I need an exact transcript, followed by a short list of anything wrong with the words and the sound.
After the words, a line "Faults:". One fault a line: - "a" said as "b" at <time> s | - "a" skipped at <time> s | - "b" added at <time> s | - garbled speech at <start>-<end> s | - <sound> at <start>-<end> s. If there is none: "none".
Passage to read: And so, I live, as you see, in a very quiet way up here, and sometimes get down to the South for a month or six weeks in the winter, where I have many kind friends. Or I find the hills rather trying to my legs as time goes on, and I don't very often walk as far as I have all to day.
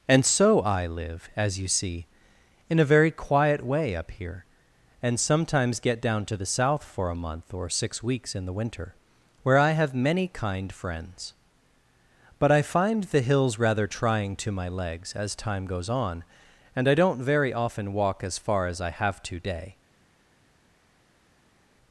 And so, I live, as you see, in a very quiet way up here, and sometimes get down to the South for a month or six weeks in the winter, where I have many kind friends. But I find the hills rather trying to my legs as time goes on, and I don't very often walk as far as I have to day.
Faults:
- "Or" said as "But" at 12.4 s
- "all" skipped at 19.2 s